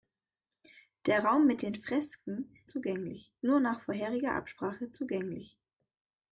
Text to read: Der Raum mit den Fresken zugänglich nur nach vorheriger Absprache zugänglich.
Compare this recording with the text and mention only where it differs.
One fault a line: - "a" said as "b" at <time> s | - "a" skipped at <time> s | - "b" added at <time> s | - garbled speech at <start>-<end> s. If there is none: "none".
none